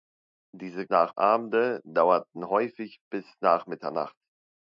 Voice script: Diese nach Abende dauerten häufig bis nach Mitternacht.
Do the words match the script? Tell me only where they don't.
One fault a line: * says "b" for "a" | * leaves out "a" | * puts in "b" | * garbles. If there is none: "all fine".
all fine